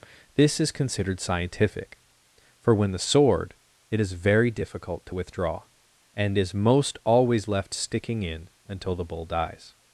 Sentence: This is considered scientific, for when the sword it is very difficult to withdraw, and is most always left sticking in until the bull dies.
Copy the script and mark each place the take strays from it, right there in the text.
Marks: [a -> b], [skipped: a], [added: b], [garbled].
This is considered scientific, for when the sword it is very difficult to withdraw, and is most always left sticking in until the bull dies.